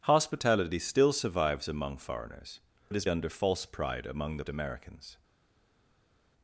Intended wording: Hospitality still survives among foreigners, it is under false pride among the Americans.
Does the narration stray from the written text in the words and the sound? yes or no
no